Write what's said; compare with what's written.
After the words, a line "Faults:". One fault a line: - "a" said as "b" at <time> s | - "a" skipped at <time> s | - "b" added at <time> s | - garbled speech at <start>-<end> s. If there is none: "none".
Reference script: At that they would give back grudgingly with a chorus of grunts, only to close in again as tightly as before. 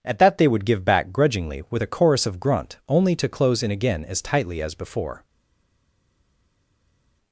At that they would give back grudgingly with a chorus of grunt, only to close in again as tightly as before.
Faults:
- "grunts" said as "grunt" at 2.4 s